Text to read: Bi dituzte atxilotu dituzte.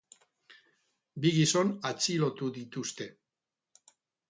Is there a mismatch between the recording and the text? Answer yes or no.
yes